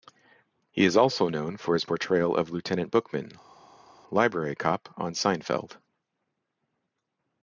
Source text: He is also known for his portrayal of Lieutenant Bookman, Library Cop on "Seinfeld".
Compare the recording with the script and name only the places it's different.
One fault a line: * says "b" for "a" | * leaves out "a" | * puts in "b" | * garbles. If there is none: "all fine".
all fine